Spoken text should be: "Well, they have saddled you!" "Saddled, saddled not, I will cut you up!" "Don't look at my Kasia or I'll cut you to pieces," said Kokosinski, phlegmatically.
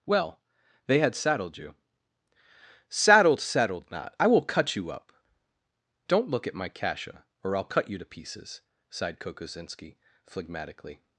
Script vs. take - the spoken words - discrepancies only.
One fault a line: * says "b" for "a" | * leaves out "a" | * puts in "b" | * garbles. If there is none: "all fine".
* says "had" for "have"
* says "sighed" for "said"